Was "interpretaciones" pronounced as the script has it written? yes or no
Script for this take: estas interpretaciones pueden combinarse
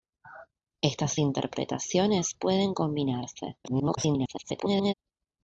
yes